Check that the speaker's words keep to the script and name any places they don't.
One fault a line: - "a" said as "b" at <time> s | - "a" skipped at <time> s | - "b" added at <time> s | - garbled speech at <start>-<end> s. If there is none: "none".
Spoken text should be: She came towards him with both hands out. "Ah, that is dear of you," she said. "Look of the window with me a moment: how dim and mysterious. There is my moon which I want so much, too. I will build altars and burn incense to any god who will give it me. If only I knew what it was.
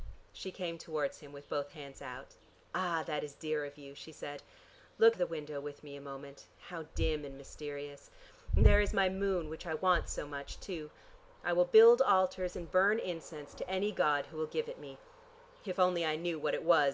none